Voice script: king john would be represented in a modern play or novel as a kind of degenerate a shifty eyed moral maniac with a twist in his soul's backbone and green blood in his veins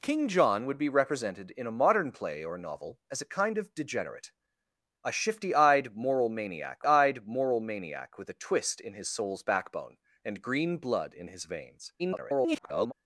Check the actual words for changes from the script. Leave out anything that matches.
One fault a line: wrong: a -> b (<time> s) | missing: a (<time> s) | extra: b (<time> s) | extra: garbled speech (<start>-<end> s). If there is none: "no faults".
extra: eyed moral maniac (6.8 s)
extra: garbled speech (12.0-12.9 s)